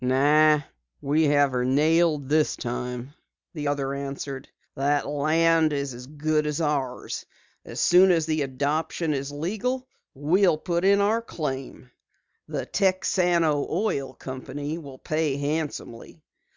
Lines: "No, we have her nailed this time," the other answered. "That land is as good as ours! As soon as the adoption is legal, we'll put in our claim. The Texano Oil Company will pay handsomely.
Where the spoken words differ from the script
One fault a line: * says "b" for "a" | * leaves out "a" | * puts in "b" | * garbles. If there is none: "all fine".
all fine